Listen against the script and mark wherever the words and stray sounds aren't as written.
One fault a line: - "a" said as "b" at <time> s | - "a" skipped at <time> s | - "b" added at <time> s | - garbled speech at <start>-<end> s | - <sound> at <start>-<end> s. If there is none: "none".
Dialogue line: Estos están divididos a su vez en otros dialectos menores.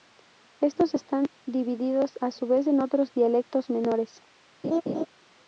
- laugh at 4.6-5.1 s